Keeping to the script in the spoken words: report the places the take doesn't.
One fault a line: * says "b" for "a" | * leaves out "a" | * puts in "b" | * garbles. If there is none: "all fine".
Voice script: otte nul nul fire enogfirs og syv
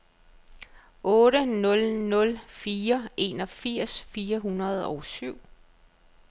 * puts in "fire hundrede"